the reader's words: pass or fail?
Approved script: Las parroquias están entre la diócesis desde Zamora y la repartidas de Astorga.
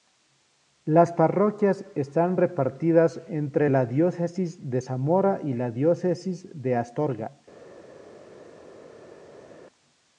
fail